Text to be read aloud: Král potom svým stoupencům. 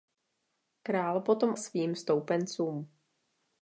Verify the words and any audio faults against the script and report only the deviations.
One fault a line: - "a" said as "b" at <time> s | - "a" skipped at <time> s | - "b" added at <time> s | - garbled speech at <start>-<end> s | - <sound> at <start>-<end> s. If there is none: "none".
none